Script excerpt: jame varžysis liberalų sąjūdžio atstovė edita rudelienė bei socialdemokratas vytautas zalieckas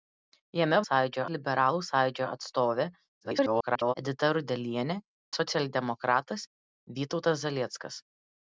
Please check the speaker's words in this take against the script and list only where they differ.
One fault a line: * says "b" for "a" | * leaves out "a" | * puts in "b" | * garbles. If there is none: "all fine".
* says "sąjūdžio" for "varžysis"
* garbles
* leaves out "bei"